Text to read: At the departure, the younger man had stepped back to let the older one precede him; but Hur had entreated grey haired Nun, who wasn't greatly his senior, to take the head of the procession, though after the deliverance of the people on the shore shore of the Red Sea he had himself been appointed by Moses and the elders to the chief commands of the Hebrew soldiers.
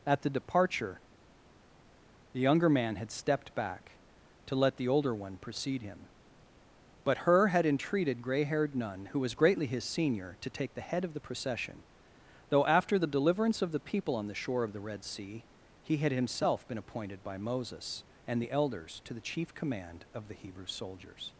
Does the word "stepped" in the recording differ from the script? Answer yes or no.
no